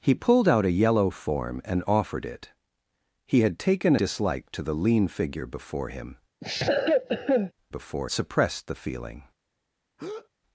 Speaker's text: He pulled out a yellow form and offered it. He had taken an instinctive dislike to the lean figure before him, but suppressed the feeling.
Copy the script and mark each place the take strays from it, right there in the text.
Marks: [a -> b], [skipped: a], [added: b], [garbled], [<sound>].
He pulled out a yellow form and offered it. He had taken [skipped: an instinctive] dislike to the lean figure before him, [cough] [but -> before] suppressed the feeling. [breath]